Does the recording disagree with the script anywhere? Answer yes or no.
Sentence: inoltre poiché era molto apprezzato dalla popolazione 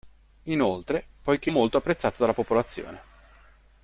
yes